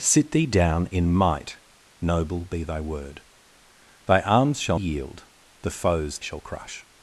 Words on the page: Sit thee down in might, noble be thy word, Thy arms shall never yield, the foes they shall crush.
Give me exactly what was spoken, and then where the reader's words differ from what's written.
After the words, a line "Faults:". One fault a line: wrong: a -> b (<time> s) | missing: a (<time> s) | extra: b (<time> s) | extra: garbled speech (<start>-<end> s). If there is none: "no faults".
Sit thee down in might, noble be thy word, Thy arms shall yield, the foes shall crush.
Faults:
missing: never (4.8 s)
missing: they (6.2 s)